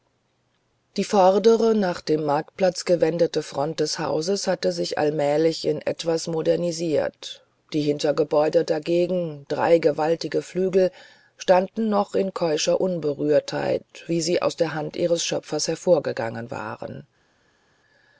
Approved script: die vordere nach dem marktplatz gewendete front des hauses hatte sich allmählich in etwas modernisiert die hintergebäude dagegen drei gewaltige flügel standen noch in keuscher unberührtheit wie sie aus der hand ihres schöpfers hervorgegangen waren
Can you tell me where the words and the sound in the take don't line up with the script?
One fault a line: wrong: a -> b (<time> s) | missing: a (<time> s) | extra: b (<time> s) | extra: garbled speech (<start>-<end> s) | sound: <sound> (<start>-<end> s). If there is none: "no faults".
no faults